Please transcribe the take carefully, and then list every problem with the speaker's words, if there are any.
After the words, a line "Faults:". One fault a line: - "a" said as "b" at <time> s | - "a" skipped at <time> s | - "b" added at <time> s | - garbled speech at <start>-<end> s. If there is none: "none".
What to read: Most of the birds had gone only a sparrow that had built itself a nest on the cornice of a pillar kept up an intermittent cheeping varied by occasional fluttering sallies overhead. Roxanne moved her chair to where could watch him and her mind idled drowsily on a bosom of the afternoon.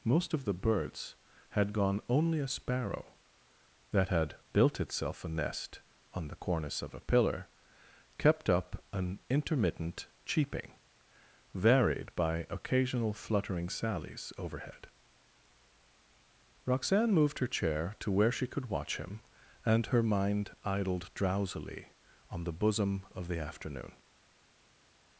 Most of the birds had gone only a sparrow that had built itself a nest on the cornice of a pillar kept up an intermittent cheeping varied by occasional fluttering sallies overhead. Roxanne moved her chair to where she could watch him and her mind idled drowsily on the bosom of the afternoon.
Faults:
- "she" added at 18.3 s
- "a" said as "the" at 22.4 s